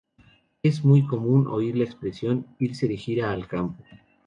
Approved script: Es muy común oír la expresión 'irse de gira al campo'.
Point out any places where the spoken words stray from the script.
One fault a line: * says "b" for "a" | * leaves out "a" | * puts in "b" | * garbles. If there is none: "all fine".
all fine